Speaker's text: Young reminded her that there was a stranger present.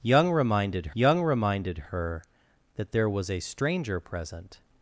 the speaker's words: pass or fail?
fail